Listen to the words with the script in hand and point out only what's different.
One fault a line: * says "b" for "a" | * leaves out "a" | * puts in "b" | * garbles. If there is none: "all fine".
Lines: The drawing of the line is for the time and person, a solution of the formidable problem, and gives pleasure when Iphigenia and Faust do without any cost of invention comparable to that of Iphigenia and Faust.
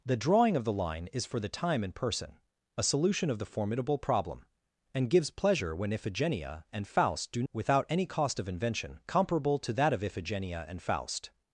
all fine